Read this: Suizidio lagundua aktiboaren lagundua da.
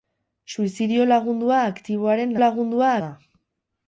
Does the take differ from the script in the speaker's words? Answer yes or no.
no